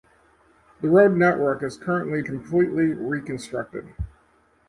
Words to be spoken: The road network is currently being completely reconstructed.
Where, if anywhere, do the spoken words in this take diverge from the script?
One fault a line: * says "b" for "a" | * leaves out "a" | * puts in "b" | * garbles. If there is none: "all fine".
* leaves out "being"